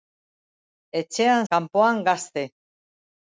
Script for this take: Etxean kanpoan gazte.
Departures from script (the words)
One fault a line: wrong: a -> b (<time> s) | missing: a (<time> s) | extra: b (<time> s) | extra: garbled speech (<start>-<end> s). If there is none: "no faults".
no faults